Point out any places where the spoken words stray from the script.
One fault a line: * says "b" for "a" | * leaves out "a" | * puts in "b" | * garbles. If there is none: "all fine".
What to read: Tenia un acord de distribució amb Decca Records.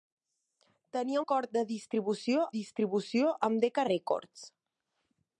* leaves out "un"
* puts in "distribució"